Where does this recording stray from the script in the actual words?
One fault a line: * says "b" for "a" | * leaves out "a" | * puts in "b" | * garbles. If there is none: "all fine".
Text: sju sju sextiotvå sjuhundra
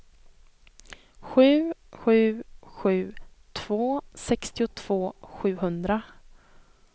* puts in "sju två"